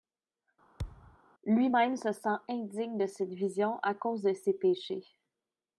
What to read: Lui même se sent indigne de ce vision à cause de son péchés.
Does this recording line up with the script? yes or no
no